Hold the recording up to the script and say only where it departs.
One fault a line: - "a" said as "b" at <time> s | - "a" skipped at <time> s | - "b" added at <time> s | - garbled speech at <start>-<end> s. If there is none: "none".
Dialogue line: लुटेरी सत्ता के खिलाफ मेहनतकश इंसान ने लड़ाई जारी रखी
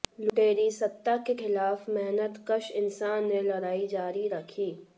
none